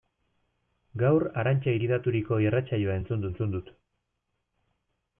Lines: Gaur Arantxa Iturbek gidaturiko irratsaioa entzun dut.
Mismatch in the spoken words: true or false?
true